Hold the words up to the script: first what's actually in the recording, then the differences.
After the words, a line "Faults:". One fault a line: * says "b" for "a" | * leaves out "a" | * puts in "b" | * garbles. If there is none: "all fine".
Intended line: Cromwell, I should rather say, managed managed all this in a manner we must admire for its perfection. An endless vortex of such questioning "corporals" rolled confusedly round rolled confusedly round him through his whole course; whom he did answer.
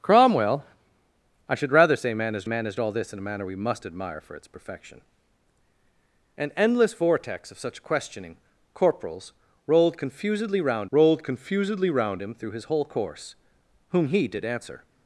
Cromwell, I should rather say, managed managed all this in a manner we must admire for its perfection. An endless vortex of such questioning "corporals" rolled confusedly round rolled confusedly round him through his whole course; whom he did answer.
Faults:
all fine